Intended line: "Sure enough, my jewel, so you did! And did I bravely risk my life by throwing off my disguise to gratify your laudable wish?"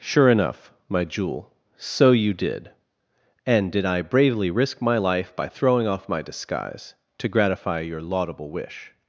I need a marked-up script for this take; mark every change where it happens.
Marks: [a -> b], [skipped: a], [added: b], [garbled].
"Sure enough, my jewel, so you did! And did I bravely risk my life by throwing off my disguise to gratify your laudable wish?"